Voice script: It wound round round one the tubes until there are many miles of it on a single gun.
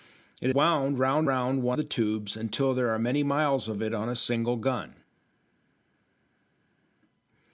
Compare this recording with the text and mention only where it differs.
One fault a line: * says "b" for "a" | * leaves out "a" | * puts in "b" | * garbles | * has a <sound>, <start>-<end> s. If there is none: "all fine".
all fine